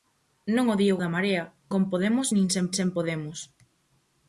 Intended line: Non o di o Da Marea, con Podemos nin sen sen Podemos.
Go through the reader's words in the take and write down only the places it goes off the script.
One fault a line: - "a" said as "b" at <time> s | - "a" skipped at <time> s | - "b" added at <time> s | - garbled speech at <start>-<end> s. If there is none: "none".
none